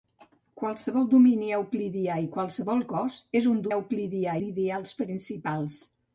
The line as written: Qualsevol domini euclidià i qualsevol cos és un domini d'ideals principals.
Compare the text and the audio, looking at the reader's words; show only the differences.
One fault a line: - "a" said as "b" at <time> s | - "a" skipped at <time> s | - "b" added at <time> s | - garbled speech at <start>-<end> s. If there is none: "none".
- "domini" said as "euclidià" at 3.8 s